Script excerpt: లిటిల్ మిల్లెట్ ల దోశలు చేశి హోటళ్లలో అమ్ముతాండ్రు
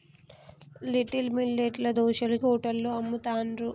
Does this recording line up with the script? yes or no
no